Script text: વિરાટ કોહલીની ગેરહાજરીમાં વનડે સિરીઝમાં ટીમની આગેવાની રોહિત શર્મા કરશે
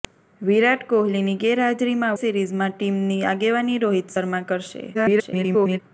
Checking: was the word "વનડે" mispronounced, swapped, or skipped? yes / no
yes